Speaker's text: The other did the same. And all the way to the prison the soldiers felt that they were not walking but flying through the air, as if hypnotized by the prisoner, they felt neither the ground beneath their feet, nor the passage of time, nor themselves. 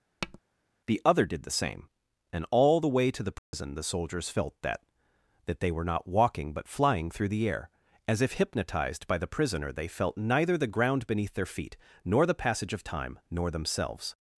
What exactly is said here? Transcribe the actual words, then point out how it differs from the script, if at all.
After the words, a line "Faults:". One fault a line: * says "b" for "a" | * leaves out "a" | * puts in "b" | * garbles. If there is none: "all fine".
The other did the same. And all the way to the prison the soldiers felt that that they were not walking but flying through the air, as if hypnotized by the prisoner, they felt neither the ground beneath their feet, nor the passage of time, nor themselves.
Faults:
* puts in "that"